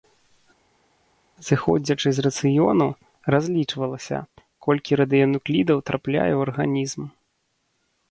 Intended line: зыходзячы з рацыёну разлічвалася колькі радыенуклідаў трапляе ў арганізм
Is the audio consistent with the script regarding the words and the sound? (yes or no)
yes